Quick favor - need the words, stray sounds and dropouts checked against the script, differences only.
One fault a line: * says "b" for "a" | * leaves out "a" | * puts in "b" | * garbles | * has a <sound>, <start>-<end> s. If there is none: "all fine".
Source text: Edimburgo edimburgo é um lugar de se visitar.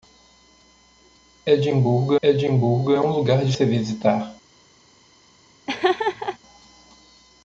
* has a laugh, 5.7-6.4 s